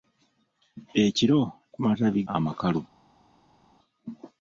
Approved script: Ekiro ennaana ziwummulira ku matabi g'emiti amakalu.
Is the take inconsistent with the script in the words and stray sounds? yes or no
yes